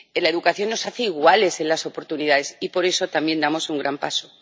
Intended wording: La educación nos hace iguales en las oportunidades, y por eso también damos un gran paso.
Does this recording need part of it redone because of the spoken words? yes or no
no